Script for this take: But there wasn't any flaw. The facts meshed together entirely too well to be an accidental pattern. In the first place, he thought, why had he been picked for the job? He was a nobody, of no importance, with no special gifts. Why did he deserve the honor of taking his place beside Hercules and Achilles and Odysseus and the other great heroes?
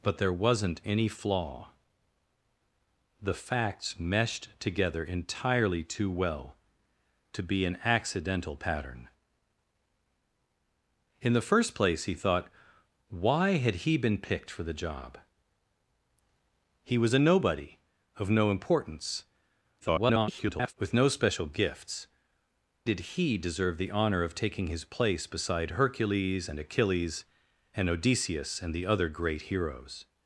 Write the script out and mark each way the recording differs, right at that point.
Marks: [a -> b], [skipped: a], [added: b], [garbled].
But there wasn't any flaw. The facts meshed together entirely too well to be an accidental pattern. In the first place, he thought, why had he been picked for the job? He was a nobody, of no importance, [garbled] with no special gifts. [skipped: Why] did he deserve the honor of taking his place beside Hercules and Achilles and Odysseus and the other great heroes?